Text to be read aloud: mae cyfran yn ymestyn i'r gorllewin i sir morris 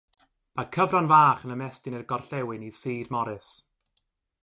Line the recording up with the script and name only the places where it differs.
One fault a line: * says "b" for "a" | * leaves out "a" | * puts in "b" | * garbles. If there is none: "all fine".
* puts in "fach"